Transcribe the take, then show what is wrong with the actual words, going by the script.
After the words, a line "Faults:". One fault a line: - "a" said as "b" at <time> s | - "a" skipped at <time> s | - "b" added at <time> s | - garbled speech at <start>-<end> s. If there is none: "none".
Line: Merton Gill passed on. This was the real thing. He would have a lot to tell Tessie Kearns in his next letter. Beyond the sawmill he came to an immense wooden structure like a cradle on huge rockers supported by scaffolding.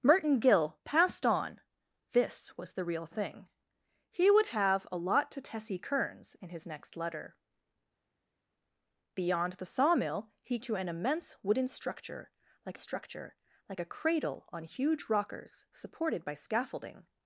Merton Gill passed on. This was the real thing. He would have a lot to Tessie Kearns in his next letter. Beyond the sawmill he to an immense wooden structure like structure like a cradle on huge rockers supported by scaffolding.
Faults:
- "tell" skipped at 5.4 s
- "came" skipped at 10.6 s
- "structure like" added at 12.8 s